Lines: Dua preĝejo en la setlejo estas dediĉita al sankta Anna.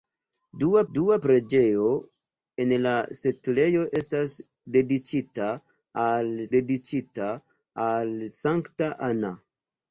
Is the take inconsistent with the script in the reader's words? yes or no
yes